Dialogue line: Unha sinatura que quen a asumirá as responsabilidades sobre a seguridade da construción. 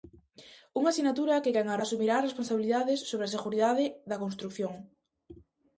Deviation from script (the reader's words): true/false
false